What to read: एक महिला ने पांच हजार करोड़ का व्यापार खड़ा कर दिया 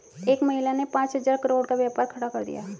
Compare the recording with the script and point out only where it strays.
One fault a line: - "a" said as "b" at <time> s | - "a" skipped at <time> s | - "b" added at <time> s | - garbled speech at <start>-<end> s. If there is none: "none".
none